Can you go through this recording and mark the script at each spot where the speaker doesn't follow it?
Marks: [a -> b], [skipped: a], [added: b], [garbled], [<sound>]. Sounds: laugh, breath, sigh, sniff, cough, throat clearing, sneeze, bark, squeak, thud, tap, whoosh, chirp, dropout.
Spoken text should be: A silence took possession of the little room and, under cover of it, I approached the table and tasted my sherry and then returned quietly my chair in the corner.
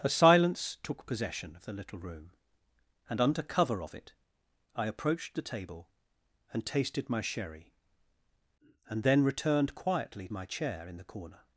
A silence took possession of the little room and, under cover of it, I approached the table and tasted my sherry and then returned quietly my chair in the corner.